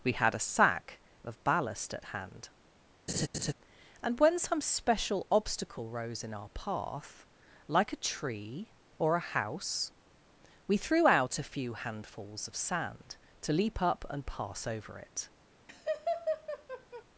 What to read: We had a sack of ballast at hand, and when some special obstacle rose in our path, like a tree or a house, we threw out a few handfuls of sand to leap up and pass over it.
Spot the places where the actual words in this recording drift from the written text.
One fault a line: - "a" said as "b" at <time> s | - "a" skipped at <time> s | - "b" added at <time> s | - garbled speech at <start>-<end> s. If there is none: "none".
none